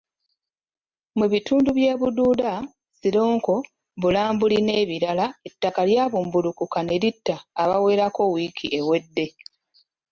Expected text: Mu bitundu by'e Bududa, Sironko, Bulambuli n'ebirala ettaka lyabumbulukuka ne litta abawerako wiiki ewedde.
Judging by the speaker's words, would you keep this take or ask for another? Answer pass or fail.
pass